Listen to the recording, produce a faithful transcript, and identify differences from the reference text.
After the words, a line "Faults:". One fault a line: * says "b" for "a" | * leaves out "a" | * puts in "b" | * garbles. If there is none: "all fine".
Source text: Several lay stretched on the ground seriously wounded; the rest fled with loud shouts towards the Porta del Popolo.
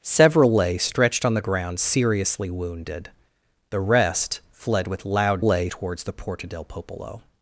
Several lay stretched on the ground seriously wounded; the rest fled with loud lay towards the Porta del Popolo.
Faults:
* says "lay" for "shouts"